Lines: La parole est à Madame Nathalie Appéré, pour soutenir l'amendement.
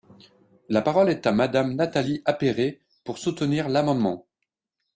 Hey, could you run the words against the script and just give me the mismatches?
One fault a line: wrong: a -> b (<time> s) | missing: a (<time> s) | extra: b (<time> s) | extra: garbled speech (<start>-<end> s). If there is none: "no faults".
no faults